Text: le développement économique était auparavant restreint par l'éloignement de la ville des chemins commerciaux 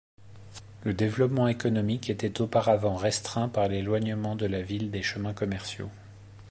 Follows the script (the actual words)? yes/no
yes